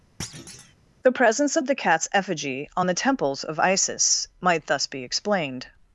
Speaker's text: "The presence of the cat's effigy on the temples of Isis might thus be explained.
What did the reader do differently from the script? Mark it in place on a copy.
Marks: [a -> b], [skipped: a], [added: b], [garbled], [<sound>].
[thud] "The presence of the cat's effigy on the temples of Isis might thus be explained.